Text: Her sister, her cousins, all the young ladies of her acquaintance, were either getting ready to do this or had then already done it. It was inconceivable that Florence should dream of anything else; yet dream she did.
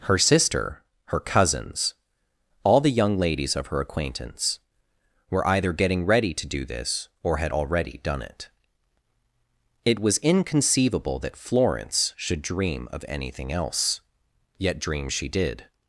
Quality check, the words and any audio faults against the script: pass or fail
fail